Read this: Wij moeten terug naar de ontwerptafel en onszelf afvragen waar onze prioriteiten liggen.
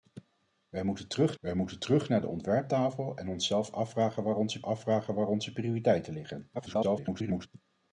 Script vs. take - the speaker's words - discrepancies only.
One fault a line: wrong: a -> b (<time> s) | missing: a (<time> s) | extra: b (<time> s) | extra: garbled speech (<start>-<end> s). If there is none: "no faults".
extra: wij moeten terug (1.4 s)
extra: afvragen waar onze (4.6 s)
extra: garbled speech (6.5-7.5 s)